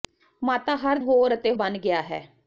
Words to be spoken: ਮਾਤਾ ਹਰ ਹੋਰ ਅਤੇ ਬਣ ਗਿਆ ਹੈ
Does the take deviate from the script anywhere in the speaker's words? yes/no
no